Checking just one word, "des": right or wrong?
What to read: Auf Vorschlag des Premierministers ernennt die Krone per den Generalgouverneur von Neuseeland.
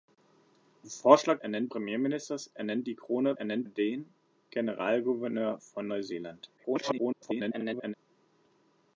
wrong